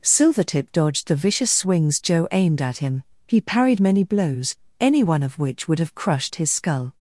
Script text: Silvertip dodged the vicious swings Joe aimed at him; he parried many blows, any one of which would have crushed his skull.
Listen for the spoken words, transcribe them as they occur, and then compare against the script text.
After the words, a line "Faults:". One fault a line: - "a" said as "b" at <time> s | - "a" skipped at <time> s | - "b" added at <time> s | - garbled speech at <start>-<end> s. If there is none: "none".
Silvertip dodged the vicious swings Joe aimed at him; he parried many blows, any one of which would have crushed his skull.
Faults:
none